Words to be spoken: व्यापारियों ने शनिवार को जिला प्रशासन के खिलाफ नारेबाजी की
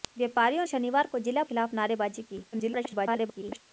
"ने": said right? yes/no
no